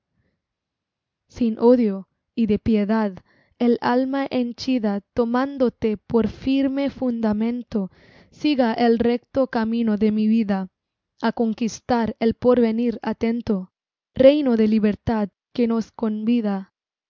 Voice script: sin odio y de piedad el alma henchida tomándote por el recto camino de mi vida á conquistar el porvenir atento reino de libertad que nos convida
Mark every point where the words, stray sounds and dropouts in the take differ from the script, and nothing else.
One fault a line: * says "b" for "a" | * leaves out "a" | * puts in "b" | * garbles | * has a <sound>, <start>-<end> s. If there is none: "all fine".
* puts in "firme fundamento siga"